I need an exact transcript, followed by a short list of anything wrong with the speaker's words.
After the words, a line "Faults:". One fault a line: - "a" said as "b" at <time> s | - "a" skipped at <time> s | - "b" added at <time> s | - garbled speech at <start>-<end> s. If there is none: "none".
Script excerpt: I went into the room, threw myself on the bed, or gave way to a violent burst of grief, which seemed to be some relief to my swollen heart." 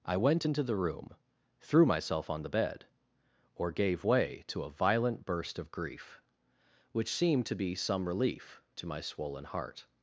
I went into the room, threw myself on the bed, or gave way to a violent burst of grief, which seemed to be some relief to my swollen heart."
Faults:
none